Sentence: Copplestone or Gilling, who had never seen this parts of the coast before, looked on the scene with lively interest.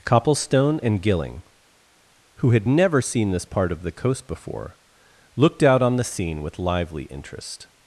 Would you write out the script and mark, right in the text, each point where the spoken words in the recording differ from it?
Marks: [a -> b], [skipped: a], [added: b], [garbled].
Copplestone [or -> and] Gilling, who had never seen this [parts -> part] of the coast before, looked [added: out] on the scene with lively interest.